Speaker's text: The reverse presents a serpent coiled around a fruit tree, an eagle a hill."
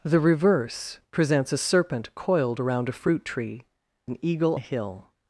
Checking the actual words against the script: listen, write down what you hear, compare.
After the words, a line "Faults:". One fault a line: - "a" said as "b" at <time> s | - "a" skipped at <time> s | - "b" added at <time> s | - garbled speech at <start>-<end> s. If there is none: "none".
The reverse presents a serpent coiled around a fruit tree, an eagle a hill."
Faults:
none